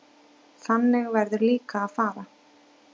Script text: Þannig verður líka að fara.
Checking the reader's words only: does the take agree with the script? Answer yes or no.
yes